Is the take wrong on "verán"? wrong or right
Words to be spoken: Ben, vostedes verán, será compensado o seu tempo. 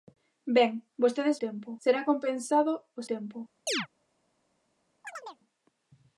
wrong